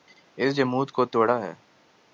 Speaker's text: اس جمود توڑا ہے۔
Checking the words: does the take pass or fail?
fail